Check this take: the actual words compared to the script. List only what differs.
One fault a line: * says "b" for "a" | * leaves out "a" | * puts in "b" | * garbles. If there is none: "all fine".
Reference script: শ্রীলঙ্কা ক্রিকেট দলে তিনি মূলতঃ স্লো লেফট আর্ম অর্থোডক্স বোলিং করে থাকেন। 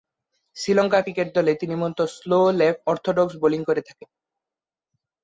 * leaves out "আর্ম"